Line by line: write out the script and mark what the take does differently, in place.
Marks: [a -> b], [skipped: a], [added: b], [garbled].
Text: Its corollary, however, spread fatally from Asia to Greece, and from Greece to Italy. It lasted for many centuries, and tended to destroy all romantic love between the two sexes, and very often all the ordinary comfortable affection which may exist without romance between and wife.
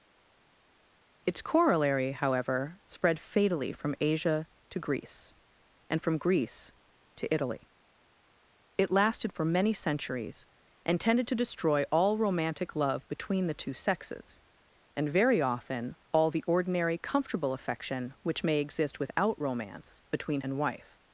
Its corollary, however, spread fatally from Asia to Greece, and from Greece to Italy. It lasted for many centuries, and tended to destroy all romantic love between the two sexes, and very often all the ordinary comfortable affection which may exist without romance between and wife.